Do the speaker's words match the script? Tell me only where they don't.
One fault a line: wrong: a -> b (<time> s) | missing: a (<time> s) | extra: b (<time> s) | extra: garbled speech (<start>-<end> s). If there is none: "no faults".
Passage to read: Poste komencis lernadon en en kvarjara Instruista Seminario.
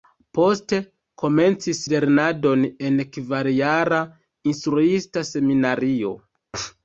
missing: en (3.0 s)